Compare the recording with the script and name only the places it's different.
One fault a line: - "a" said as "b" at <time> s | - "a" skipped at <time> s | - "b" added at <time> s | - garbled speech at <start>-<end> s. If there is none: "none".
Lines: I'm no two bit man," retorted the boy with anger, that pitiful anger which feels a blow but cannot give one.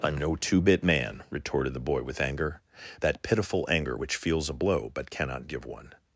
none